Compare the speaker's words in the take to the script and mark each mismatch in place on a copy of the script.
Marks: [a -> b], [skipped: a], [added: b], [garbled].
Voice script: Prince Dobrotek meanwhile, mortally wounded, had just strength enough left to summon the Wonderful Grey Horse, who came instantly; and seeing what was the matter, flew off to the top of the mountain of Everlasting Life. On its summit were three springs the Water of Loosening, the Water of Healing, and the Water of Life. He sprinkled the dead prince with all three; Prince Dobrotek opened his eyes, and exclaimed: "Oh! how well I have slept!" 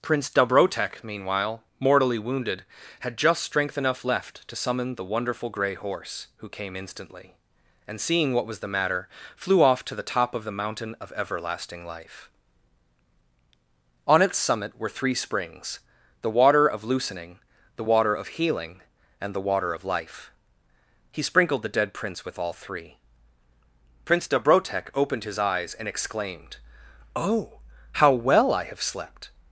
Prince Dobrotek meanwhile, mortally wounded, had just strength enough left to summon the Wonderful Grey Horse, who came instantly; and seeing what was the matter, flew off to the top of the mountain of Everlasting Life. On its summit were three springs the Water of Loosening, the Water of Healing, and the Water of Life. He sprinkled the dead prince with all three; Prince Dobrotek opened his eyes, and exclaimed: "Oh! how well I have slept!"